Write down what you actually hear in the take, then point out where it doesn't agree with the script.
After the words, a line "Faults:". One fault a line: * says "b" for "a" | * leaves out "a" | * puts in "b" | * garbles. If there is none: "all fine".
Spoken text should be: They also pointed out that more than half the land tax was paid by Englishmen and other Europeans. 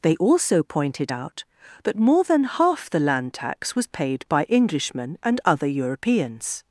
They also pointed out that more than half the land tax was paid by Englishmen and other Europeans.
Faults:
all fine